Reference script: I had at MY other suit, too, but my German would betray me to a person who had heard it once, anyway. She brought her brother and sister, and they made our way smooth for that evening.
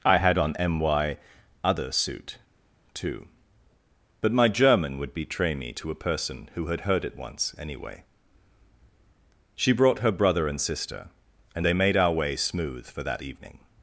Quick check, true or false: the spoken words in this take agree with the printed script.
false